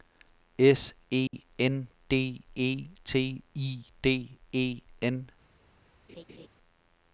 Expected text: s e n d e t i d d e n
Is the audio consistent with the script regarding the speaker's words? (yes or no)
no